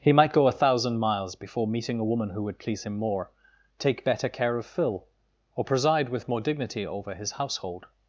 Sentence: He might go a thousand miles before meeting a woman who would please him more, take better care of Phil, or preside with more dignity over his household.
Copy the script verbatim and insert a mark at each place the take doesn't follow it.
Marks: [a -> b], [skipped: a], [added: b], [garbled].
He might go a thousand miles before meeting a woman who would please him more, take better care of Phil, or preside with more dignity over his household.